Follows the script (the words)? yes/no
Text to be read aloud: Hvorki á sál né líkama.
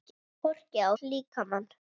no